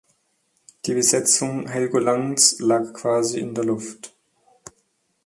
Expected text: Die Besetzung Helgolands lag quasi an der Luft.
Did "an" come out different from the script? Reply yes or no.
yes